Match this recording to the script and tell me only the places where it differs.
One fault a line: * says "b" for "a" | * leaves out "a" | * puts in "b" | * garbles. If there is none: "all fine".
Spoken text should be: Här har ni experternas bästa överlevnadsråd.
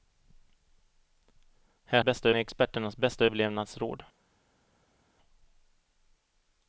* says "bästa" for "har"